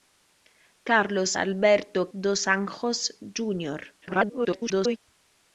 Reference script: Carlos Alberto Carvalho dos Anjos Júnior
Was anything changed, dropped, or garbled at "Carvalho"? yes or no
yes